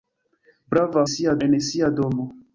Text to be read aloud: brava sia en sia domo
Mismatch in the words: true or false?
false